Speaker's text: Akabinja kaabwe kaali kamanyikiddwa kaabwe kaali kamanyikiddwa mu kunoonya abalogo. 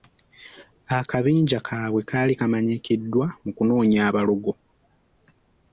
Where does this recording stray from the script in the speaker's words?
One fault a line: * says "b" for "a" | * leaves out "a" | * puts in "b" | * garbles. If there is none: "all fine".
* leaves out "kaabwe kaali kamanyikiddwa"